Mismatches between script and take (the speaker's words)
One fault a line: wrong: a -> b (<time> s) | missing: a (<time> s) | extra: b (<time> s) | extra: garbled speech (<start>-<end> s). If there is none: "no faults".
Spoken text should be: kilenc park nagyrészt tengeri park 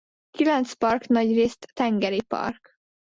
no faults